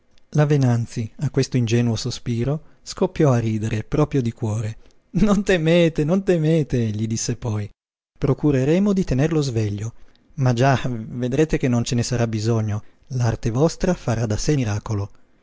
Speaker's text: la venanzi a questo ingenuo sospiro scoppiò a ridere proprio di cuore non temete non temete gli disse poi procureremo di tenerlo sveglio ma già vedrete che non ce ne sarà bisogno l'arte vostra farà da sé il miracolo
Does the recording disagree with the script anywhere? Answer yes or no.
yes